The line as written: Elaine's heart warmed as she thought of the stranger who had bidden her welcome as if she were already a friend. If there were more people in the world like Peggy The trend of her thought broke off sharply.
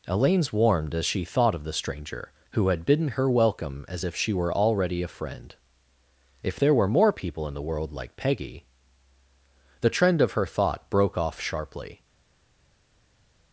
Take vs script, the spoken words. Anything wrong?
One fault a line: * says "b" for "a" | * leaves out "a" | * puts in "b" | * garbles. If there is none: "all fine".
* leaves out "heart"